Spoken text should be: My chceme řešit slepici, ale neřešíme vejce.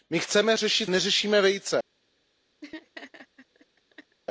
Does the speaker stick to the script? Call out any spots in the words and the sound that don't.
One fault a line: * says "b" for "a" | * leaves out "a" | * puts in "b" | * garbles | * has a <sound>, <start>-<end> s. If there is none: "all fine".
* leaves out "slepici ale"
* has a laugh, 2.6-4.2 s